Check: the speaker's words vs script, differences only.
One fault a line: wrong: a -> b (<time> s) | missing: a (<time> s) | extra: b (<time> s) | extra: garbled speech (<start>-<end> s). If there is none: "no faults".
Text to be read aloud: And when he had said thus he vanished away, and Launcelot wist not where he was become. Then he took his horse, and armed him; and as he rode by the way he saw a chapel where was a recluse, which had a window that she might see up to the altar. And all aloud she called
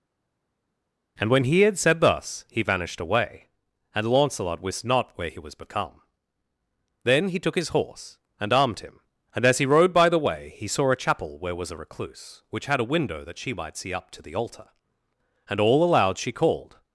no faults